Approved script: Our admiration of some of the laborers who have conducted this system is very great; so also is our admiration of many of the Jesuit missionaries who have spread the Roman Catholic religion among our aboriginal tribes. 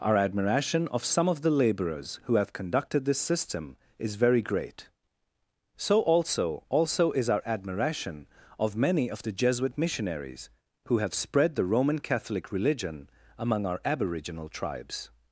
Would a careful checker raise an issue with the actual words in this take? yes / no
yes